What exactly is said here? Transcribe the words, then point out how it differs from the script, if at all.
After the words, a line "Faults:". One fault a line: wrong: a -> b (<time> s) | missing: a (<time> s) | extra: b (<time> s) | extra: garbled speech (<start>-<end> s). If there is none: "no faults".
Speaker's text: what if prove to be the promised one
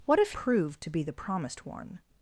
what if prove to be the promised one
Faults:
no faults